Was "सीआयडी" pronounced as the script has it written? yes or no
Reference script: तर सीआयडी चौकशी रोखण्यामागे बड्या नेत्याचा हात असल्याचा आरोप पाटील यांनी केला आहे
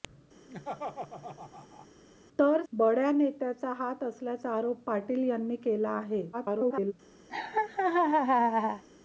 no